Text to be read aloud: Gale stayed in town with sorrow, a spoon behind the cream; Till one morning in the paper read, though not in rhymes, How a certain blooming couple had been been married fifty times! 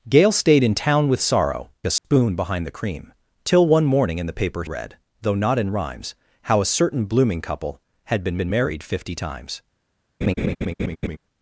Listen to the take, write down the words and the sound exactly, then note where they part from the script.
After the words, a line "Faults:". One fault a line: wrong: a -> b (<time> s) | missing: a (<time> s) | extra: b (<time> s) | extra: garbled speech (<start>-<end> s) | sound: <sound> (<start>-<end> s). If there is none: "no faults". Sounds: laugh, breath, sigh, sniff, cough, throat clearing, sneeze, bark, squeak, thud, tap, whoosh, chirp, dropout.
Gale stayed in town with sorrow, a spoon behind the cream; Till one morning in the paper read, though not in rhymes, How a certain blooming couple had been been married fifty times!
Faults:
sound: dropout (2.0-2.0 s)
sound: laugh (10.2-11.2 s)